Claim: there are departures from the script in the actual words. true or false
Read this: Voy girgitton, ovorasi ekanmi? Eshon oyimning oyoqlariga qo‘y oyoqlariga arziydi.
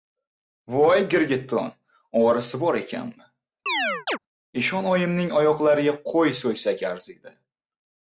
true